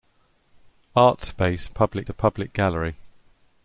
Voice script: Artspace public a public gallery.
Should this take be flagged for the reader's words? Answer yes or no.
no